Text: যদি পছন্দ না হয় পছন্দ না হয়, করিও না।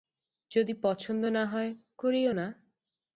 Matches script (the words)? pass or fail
fail